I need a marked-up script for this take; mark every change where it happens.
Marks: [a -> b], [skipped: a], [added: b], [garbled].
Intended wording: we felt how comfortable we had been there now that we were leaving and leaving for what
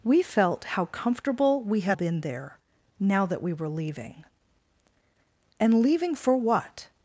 we felt how comfortable we had been there now that we were leaving and leaving for what